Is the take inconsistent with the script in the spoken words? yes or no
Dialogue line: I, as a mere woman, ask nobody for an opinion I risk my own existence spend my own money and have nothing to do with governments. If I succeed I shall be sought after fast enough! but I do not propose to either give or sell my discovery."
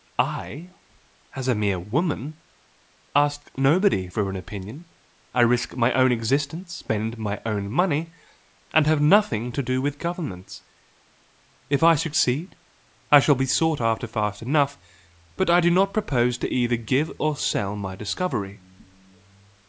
no